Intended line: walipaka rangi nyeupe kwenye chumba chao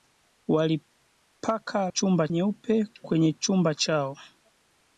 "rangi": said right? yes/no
no